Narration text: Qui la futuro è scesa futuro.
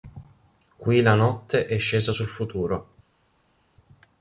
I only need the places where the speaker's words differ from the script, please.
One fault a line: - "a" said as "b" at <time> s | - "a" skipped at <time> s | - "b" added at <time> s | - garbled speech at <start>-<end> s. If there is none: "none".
- "futuro" said as "notte" at 1.1 s
- "sul" added at 2.1 s